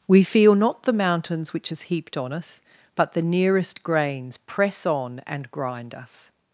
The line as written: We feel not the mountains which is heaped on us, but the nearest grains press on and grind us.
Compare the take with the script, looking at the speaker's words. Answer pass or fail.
pass